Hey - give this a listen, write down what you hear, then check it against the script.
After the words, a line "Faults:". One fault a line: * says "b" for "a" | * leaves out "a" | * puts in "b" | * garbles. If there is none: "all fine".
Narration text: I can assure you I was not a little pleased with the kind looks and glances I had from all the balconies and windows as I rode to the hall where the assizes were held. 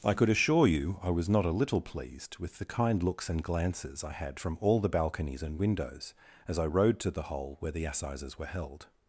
I could assure you I was not a little pleased with the kind looks and glances I had from all the balconies and windows as I rode to the hole where the assizes were held.
Faults:
* says "could" for "can"
* says "hole" for "hall"